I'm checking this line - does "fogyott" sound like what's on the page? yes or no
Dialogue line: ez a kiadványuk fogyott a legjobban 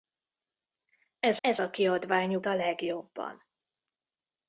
no